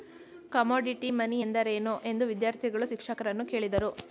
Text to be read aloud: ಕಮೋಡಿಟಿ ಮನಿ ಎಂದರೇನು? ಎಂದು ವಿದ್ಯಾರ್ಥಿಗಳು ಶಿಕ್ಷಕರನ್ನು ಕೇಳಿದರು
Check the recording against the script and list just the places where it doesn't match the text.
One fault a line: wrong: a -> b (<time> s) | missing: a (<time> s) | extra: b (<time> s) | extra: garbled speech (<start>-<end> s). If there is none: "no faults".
no faults